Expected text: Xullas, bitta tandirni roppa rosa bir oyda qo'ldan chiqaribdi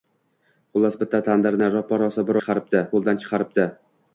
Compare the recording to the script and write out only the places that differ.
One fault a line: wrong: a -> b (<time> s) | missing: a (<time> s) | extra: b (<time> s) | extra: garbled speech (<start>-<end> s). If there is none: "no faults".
wrong: oyda -> chiqaribdi (2.4 s)